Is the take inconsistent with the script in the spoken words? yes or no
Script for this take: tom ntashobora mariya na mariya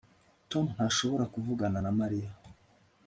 yes